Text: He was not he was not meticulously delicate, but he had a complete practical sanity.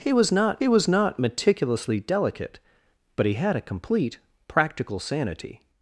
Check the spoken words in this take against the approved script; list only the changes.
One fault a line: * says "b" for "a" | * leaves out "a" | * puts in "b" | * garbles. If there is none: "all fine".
all fine